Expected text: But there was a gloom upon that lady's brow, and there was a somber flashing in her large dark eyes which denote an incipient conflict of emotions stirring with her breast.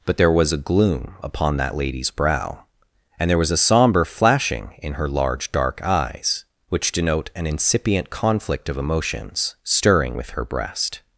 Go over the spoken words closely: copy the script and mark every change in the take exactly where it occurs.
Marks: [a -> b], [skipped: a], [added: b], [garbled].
But there was a gloom upon that lady's brow, and there was a somber flashing in her large dark eyes which denote an incipient conflict of emotions stirring with her breast.